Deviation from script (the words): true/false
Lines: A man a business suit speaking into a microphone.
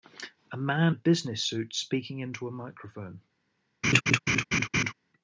false